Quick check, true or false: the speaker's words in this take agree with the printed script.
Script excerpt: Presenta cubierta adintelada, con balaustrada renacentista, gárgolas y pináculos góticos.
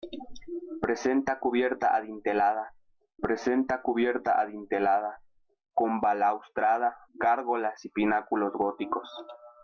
false